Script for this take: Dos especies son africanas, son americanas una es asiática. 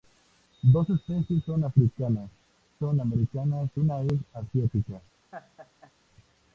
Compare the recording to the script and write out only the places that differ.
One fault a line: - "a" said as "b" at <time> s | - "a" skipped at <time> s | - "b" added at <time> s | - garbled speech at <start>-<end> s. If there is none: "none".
none